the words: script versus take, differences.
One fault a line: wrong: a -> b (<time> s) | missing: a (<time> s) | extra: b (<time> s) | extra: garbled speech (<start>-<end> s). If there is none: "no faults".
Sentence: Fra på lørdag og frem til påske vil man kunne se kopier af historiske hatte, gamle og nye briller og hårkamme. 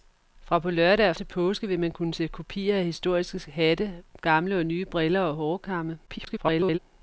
missing: frem (1.1 s)
extra: garbled speech (6.1-6.8 s)